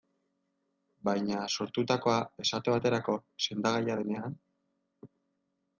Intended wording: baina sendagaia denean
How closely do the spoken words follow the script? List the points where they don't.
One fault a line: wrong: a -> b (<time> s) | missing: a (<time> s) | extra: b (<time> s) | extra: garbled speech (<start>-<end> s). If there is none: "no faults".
extra: sortutakoa esate baterako (1.6 s)